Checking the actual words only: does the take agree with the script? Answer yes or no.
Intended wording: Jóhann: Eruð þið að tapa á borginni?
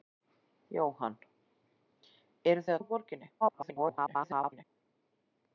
no